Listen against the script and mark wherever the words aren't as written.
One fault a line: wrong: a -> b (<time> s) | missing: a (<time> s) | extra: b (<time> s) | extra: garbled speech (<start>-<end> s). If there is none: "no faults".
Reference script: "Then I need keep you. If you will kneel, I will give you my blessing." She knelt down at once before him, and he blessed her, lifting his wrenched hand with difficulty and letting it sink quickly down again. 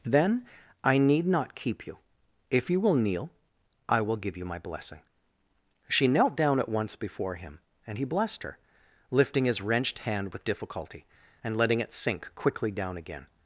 extra: not (1.3 s)